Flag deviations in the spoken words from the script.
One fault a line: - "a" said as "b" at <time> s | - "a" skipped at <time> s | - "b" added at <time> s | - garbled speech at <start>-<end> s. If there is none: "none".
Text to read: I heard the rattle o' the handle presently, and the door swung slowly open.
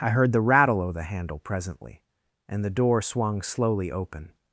none